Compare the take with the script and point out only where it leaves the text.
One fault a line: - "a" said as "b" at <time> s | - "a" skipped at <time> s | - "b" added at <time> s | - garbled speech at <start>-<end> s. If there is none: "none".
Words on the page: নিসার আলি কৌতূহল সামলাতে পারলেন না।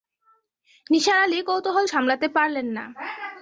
none